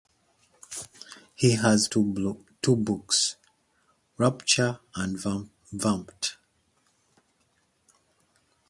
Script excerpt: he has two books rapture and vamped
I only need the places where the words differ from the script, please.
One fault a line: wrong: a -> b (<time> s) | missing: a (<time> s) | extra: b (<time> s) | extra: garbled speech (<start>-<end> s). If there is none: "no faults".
no faults